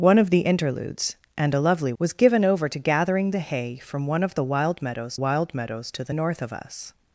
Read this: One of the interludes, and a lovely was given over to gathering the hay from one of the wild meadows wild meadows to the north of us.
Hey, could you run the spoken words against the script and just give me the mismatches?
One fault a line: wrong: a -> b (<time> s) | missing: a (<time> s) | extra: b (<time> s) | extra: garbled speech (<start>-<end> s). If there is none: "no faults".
no faults